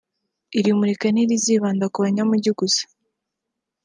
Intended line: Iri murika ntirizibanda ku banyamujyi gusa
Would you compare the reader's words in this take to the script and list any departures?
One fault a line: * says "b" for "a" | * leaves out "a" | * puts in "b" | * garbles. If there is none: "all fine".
all fine